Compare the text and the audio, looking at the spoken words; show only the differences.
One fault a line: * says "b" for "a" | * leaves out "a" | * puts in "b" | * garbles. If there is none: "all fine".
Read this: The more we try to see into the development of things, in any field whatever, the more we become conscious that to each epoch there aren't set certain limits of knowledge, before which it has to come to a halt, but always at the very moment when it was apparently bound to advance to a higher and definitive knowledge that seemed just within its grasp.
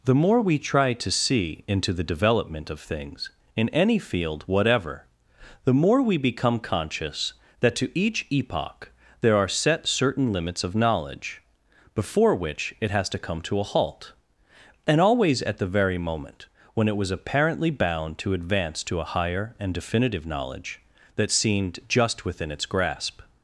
* says "are" for "aren't"
* says "and" for "but"